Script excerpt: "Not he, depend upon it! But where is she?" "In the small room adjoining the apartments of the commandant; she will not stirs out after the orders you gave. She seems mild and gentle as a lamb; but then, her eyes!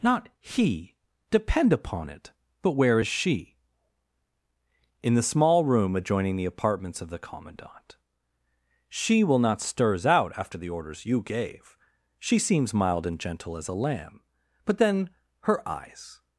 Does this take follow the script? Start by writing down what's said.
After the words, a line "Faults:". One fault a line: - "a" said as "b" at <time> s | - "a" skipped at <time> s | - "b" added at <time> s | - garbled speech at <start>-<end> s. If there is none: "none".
"Not he, depend upon it! But where is she?" "In the small room adjoining the apartments of the commandant; she will not stirs out after the orders you gave. She seems mild and gentle as a lamb; but then, her eyes!
Faults:
none